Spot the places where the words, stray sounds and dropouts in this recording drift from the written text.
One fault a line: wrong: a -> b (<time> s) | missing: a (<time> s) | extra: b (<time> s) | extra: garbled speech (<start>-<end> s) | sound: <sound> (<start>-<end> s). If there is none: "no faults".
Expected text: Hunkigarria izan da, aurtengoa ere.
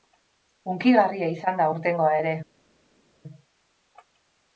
no faults